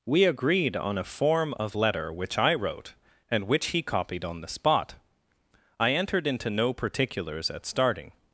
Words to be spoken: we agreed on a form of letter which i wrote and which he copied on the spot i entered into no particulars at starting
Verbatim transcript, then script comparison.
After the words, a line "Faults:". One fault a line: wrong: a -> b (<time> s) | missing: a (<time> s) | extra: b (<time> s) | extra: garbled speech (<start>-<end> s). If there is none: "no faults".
we agreed on a form of letter which i wrote and which he copied on the spot i entered into no particulars at starting
Faults:
no faults